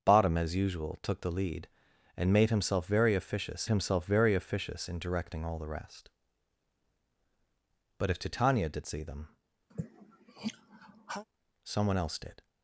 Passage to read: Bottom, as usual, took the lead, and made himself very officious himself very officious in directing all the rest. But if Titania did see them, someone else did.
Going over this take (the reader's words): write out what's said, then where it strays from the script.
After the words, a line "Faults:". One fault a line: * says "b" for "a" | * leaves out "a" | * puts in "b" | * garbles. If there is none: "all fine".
Bottom, as usual, took the lead, and made himself very officious himself very officious in directing all the rest. But if Titania did see them, someone else did.
Faults:
all fine